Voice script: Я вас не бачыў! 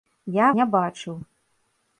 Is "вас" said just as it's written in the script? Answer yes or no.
no